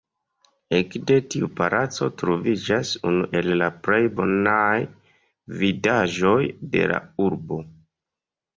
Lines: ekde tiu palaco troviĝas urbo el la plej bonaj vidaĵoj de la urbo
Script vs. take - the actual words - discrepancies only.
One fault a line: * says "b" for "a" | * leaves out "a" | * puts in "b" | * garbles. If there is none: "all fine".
* says "unu" for "urbo"